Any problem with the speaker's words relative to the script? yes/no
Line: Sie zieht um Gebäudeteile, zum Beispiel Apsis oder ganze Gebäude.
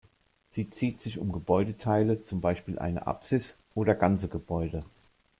yes